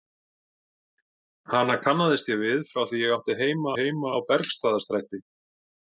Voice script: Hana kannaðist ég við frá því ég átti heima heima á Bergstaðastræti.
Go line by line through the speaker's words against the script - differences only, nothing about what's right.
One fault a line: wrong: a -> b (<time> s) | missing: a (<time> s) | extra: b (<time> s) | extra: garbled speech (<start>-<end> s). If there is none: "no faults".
no faults